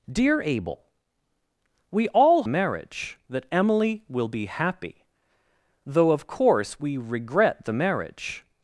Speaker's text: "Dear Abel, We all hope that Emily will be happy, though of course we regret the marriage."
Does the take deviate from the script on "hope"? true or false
true